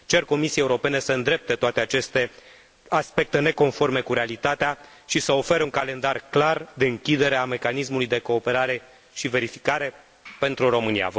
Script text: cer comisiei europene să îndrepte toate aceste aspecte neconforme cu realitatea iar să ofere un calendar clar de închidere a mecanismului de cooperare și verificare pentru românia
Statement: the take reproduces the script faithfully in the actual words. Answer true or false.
false